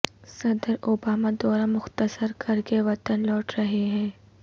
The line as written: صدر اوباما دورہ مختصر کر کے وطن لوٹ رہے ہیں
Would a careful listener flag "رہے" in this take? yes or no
no